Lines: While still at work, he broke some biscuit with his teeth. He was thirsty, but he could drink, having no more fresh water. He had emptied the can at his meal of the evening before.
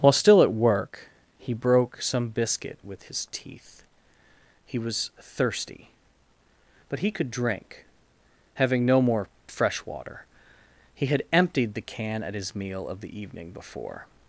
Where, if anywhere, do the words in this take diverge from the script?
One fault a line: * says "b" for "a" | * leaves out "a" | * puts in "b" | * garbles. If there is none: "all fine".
all fine